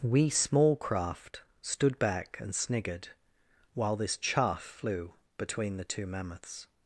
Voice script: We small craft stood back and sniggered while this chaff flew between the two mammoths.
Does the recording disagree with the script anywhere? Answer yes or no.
no